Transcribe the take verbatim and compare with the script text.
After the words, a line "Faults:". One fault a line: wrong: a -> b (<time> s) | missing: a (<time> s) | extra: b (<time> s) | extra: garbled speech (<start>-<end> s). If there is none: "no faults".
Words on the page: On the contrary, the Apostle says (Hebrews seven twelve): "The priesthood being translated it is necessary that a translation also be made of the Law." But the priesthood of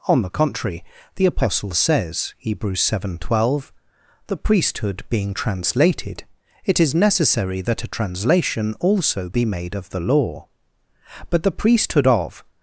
On the contrary, the Apostle says (Hebrews seven twelve): "The priesthood being translated it is necessary that a translation also be made of the Law." But the priesthood of
Faults:
no faults